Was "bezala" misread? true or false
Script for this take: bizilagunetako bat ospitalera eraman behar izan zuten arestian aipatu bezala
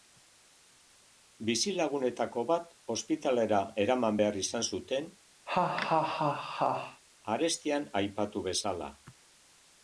false